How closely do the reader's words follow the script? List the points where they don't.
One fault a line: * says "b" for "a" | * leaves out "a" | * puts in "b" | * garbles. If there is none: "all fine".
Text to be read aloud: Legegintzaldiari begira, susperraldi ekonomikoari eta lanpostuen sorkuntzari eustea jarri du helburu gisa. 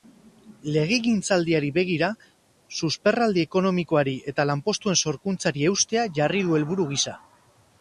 all fine